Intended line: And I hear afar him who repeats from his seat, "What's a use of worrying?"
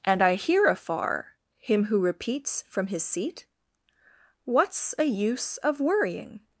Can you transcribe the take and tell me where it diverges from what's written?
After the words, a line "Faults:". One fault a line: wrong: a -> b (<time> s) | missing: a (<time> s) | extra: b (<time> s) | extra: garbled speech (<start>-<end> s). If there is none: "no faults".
And I hear afar him who repeats from his seat, "What's a use of worrying?"
Faults:
no faults